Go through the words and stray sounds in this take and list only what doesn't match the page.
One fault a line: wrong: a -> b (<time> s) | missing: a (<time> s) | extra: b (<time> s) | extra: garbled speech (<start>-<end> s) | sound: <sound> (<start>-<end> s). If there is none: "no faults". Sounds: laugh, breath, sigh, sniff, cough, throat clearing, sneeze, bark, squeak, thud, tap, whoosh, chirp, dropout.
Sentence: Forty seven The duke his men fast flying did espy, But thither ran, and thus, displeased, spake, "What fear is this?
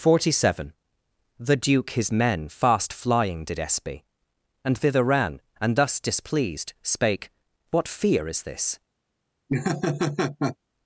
wrong: But -> And (4.6 s)
sound: laugh (9.5-10.6 s)